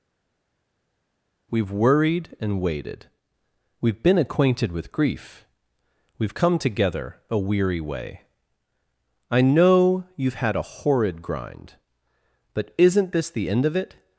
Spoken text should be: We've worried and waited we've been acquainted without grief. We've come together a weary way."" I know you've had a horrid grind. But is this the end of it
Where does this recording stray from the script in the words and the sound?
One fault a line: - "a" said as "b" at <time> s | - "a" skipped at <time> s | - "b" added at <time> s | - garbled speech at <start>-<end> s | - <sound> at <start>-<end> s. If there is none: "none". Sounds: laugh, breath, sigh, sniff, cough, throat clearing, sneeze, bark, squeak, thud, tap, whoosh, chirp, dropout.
- "without" said as "with" at 4.7 s
- "is" said as "isn't" at 12.8 s